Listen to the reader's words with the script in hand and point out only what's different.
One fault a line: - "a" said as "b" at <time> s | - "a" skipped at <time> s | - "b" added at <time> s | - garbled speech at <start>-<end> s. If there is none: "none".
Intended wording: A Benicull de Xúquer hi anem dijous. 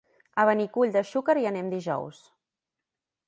none